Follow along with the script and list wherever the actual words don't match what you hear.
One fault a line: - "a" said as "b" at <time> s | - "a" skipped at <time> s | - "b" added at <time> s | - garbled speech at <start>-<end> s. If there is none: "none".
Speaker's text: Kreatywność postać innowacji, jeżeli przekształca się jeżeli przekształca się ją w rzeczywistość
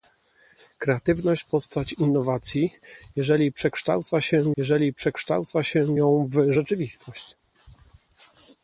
none